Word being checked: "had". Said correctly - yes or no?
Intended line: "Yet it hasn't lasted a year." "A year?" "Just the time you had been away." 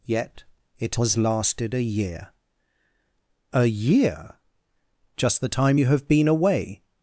no